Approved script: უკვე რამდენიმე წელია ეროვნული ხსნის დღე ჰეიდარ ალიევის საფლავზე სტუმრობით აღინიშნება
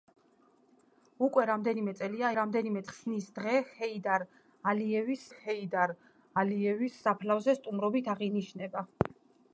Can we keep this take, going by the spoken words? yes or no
no